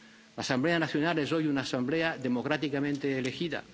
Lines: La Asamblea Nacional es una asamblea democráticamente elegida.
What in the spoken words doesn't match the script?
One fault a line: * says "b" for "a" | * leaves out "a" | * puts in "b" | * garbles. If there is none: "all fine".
* puts in "hoy"